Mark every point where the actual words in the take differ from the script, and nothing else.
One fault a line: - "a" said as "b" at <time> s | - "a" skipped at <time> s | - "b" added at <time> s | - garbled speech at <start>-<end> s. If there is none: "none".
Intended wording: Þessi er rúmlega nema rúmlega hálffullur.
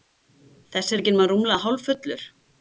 - "rúmlega" said as "ekki" at 1.0 s